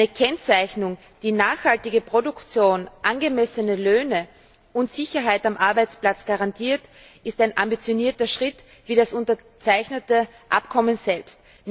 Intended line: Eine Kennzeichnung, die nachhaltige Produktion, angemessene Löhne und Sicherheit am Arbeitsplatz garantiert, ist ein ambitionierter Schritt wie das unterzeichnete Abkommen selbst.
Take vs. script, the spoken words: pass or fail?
pass